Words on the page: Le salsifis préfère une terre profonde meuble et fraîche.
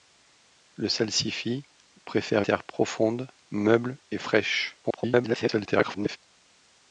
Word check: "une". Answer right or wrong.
wrong